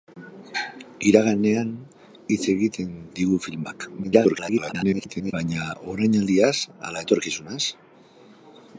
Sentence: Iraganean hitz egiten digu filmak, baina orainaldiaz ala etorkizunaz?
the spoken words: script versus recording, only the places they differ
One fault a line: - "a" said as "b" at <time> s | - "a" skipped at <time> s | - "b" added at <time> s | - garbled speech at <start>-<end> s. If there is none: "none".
- garbled speech at 4.0-5.3 s